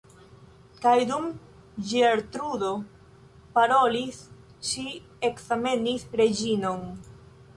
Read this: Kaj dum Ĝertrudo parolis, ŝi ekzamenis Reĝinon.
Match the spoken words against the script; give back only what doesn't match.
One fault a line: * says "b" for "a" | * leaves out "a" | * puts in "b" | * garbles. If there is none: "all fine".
all fine